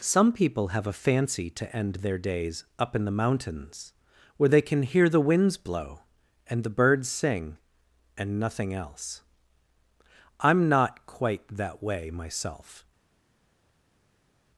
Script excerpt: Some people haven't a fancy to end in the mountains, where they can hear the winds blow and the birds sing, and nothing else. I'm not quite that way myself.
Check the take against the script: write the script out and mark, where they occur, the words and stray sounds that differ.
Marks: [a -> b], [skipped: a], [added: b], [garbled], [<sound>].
Some people [haven't -> have] a fancy to end [added: their days up] in the mountains, where they can hear the winds blow and the birds sing, and nothing else. I'm not quite that way myself.